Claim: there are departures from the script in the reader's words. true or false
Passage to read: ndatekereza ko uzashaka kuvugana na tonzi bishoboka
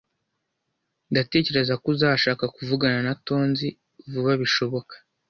true